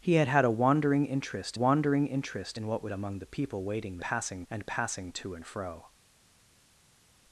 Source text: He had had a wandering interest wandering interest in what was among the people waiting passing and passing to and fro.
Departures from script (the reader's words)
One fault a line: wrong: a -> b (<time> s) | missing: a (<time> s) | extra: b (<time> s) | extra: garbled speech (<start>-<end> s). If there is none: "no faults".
no faults